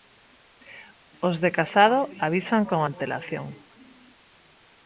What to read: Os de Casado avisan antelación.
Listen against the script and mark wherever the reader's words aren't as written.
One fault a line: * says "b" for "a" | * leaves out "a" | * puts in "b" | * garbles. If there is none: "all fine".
* puts in "con"